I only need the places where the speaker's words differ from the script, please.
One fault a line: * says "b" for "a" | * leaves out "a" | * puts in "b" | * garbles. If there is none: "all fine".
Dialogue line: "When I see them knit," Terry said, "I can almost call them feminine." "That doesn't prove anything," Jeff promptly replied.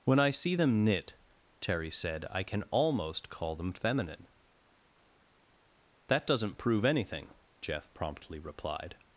all fine